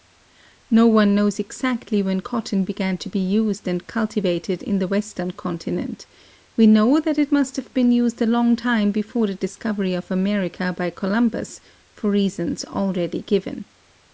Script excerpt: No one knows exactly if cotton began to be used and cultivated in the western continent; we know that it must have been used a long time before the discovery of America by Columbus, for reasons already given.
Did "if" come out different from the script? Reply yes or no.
yes